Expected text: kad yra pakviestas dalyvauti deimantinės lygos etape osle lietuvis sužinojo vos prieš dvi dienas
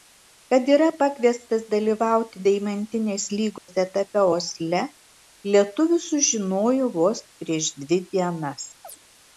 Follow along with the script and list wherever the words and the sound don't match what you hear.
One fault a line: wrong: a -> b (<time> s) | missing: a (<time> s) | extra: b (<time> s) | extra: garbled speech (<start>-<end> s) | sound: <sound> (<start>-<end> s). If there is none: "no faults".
sound: dropout (3.6-3.7 s)
sound: chirp (8.8-9.0 s)